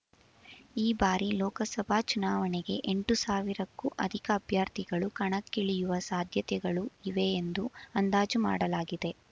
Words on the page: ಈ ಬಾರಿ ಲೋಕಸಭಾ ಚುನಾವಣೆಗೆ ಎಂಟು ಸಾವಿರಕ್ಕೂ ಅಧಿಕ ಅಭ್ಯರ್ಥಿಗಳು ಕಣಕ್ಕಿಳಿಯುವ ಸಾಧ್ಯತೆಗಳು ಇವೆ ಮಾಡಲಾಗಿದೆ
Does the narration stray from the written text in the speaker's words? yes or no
yes